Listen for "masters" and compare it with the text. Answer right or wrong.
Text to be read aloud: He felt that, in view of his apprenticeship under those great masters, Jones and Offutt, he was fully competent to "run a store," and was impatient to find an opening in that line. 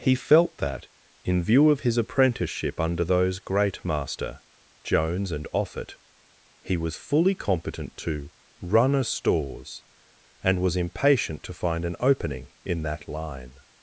wrong